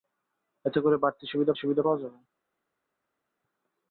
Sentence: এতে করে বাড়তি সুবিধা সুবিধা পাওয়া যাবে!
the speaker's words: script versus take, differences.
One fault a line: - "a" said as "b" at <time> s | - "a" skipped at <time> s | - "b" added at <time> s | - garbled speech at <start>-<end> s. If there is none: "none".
none